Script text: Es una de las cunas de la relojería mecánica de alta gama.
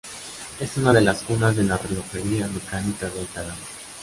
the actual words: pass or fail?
pass